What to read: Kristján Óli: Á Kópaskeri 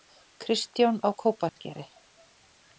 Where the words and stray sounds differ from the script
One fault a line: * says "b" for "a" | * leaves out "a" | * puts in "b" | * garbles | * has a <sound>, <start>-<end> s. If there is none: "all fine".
* leaves out "Óli"
* has a dropout, 1.5-1.6 s